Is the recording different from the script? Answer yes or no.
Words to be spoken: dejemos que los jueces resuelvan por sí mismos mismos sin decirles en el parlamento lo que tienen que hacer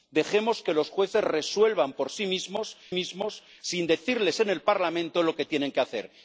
no